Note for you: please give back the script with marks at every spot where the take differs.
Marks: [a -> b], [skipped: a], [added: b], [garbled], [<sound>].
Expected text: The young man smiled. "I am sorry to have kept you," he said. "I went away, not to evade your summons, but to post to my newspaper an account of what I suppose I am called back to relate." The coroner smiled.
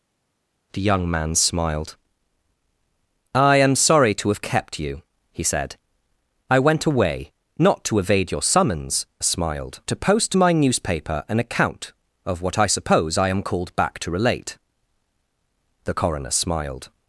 The young man smiled. "I am sorry to have kept you," he said. "I went away, not to evade your summons, [but -> smiled] to post to my newspaper an account of what I suppose I am called back to relate." The coroner smiled.